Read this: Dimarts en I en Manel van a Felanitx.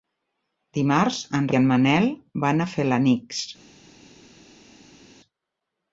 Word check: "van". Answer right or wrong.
right